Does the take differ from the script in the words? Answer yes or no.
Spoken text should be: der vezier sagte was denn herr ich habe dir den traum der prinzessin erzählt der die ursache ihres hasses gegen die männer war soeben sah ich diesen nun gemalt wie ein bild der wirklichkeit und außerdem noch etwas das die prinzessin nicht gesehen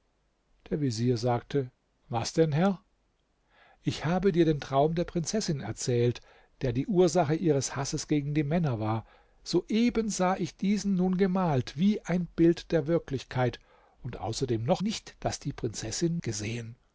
yes